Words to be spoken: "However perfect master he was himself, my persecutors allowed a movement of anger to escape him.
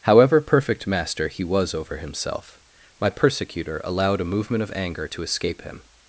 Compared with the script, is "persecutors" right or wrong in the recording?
wrong